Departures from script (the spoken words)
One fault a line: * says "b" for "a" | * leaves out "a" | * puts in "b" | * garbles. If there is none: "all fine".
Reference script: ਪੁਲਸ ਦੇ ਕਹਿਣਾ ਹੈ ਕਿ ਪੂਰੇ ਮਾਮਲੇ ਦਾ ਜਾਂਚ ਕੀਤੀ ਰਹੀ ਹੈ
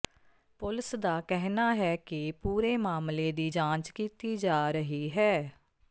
* says "ਦਾ" for "ਦੇ"
* says "ਦੀ" for "ਦਾ"
* puts in "ਜਾ"